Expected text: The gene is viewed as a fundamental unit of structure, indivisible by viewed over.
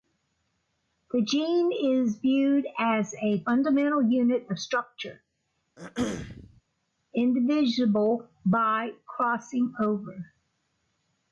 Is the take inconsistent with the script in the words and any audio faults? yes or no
yes